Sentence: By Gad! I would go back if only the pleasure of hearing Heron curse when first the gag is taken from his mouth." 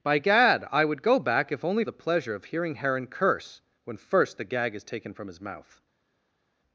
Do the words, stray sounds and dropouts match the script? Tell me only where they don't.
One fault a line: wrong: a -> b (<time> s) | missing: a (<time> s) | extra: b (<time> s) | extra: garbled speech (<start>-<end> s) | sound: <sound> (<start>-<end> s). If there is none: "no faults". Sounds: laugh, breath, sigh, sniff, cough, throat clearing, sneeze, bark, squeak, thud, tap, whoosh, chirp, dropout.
no faults